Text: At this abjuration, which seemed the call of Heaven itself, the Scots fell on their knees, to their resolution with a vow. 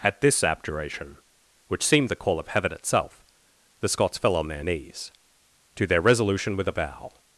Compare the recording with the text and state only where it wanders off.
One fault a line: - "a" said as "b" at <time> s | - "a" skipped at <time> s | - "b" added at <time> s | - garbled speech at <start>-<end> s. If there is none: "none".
none